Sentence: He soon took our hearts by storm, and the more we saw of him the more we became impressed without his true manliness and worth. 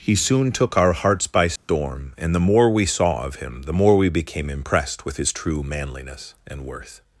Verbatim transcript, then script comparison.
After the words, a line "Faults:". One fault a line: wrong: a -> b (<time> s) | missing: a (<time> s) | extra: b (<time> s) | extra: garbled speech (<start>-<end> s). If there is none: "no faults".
He soon took our hearts by storm, and the more we saw of him the more we became impressed with his true manliness and worth.
Faults:
wrong: without -> with (5.0 s)